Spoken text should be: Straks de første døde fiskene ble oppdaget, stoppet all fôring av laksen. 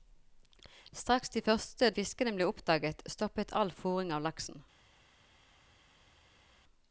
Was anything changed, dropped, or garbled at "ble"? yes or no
no